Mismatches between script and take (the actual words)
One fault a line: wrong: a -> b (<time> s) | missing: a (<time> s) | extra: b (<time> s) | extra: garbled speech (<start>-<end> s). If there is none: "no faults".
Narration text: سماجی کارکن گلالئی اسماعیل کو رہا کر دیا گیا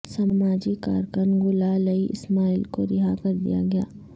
no faults